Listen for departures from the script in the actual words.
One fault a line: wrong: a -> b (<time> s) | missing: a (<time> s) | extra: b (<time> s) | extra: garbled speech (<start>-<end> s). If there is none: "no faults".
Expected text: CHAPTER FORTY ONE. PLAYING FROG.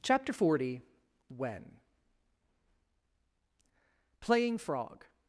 wrong: ONE -> When (1.3 s)